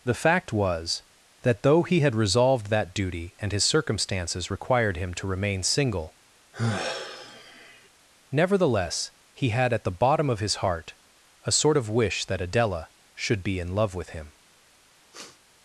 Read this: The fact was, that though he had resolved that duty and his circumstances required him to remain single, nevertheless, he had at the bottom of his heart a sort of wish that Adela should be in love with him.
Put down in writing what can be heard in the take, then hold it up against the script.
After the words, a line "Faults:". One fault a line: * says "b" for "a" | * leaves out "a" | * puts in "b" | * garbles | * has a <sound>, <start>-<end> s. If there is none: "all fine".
The fact was, that though he had resolved that duty and his circumstances required him to remain single, nevertheless, he had at the bottom of his heart a sort of wish that Adela should be in love with him.
Faults:
* has a sigh, 6.5-7.9 s
* has a sniff, 15.1-15.4 s